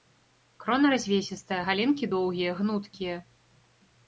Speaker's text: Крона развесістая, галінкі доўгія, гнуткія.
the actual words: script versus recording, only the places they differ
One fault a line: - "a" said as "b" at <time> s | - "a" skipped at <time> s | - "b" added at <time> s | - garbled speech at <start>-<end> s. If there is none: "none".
none